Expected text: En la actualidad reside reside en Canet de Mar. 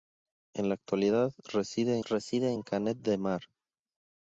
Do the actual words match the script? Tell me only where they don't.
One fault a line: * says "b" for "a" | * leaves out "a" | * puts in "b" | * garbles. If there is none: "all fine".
all fine